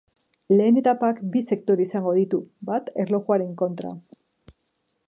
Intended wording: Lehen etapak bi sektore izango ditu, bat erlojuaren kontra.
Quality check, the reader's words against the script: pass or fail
pass